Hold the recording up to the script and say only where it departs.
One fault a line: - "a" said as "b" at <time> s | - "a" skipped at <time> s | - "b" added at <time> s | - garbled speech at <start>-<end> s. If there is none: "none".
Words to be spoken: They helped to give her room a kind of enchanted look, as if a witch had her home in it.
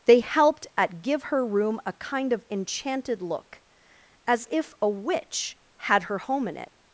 - "to" said as "at" at 0.8 s